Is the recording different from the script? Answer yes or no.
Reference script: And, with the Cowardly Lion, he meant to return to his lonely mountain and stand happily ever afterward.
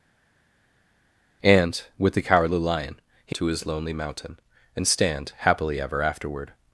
yes